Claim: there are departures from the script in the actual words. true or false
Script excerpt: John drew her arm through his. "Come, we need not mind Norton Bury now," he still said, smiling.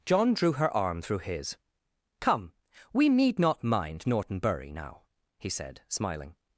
true